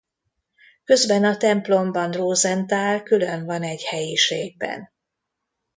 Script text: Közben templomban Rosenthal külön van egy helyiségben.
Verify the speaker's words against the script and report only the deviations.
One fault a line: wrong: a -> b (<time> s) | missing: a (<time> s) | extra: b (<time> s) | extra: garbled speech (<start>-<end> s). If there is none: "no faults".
extra: a (1.2 s)